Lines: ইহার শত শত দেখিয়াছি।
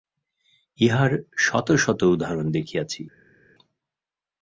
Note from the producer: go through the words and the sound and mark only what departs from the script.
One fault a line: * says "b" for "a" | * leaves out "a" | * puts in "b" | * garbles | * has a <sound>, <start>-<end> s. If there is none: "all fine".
* puts in "উদাহরণ"